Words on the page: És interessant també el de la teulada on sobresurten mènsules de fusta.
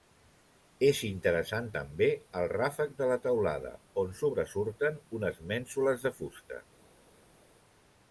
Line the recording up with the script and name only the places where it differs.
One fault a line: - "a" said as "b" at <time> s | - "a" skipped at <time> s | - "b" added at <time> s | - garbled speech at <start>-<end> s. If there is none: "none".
- "ràfec" added at 2.5 s
- "unes" added at 5.2 s